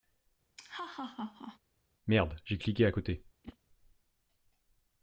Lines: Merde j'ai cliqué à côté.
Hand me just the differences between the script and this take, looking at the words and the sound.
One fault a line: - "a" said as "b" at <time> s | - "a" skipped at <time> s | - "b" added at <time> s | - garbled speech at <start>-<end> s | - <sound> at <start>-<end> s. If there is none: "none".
- laugh at 0.6-1.6 s
- whoosh at 3.4-3.6 s